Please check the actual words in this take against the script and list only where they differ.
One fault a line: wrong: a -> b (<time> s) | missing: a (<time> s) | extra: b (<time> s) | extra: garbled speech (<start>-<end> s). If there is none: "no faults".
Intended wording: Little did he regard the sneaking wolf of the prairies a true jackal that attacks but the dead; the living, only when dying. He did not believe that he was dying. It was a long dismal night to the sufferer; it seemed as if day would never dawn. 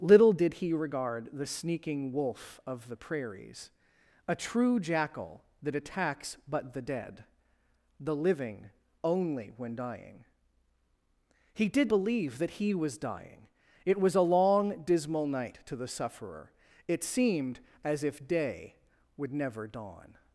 missing: not (11.9 s)